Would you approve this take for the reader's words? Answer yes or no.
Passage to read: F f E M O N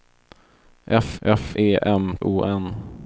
yes